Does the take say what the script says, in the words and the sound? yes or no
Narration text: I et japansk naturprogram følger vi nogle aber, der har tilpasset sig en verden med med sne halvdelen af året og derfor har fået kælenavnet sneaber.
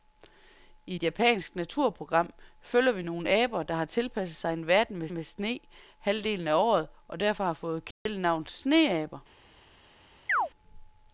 no